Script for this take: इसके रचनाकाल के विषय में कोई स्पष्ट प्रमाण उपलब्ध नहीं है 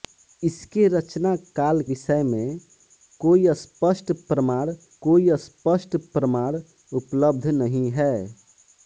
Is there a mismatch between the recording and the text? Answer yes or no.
yes